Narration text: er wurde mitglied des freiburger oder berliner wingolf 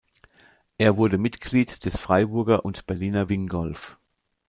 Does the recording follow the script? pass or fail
fail